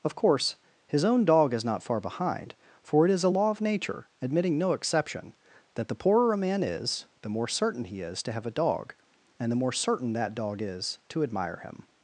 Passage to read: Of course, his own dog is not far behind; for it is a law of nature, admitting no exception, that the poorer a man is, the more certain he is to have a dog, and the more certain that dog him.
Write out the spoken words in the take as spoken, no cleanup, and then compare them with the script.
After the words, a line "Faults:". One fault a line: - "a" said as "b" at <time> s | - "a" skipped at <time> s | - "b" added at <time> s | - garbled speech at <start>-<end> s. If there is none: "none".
Of course, his own dog is not far behind; for it is a law of nature, admitting no exception, that the poorer a man is, the more certain he is to have a dog, and the more certain that dog is to admire him.
Faults:
- "is to admire" added at 10.6 s